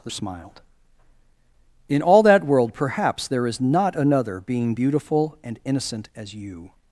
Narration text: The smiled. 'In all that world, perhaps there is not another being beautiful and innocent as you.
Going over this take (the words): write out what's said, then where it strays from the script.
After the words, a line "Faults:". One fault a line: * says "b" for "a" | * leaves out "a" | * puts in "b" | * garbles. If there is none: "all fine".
The smiled. 'In all that world, perhaps there is not another being beautiful and innocent as you.
Faults:
all fine